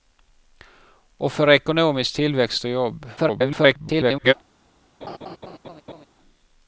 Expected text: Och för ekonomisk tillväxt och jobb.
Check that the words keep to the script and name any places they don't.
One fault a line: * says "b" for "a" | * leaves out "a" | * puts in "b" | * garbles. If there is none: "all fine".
* garbles